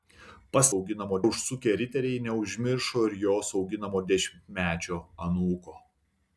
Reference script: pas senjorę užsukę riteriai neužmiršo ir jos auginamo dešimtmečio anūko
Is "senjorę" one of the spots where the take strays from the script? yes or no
yes